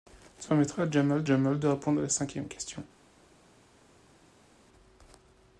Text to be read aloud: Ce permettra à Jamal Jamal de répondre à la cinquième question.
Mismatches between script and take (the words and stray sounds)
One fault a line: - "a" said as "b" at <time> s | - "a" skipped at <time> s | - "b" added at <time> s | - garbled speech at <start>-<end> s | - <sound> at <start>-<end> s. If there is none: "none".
none